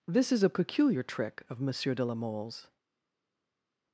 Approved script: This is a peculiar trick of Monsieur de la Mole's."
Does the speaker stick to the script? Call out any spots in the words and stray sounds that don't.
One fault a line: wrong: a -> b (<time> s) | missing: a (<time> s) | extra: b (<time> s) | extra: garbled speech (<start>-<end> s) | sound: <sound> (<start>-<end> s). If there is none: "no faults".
no faults